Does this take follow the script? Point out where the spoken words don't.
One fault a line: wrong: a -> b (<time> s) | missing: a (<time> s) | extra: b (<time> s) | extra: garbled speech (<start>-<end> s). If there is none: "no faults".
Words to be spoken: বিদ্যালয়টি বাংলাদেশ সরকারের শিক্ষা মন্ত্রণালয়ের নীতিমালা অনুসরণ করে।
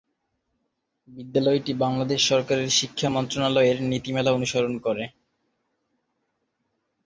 no faults